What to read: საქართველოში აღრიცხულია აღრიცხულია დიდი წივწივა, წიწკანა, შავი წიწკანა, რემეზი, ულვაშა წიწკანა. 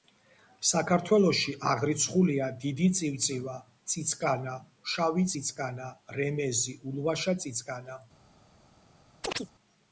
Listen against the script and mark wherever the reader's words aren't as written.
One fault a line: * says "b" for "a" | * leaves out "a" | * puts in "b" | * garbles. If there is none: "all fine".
* leaves out "აღრიცხულია"